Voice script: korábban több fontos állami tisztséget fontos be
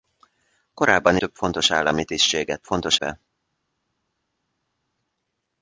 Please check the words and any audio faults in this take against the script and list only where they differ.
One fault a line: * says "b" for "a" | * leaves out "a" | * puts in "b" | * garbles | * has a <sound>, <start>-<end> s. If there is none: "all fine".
all fine